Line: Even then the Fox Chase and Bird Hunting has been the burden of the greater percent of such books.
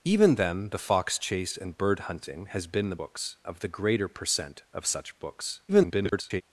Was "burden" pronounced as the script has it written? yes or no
no